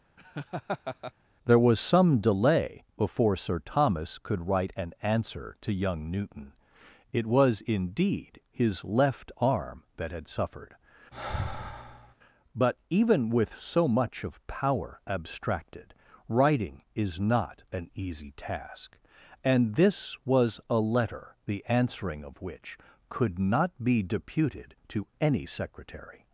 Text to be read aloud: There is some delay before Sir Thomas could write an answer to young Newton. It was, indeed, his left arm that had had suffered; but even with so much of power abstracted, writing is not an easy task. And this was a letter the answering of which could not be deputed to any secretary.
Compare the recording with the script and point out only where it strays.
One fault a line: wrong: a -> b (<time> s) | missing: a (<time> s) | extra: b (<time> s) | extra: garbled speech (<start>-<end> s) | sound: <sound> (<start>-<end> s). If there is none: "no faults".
sound: laugh (0.2-1.1 s)
wrong: is -> was (1.6 s)
missing: had (10.3 s)
sound: sigh (11.1-12.1 s)